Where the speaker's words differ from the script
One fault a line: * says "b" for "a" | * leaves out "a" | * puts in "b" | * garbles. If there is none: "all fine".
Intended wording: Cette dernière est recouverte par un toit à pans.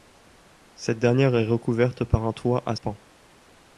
all fine